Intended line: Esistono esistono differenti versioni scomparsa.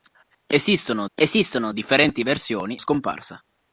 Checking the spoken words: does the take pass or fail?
pass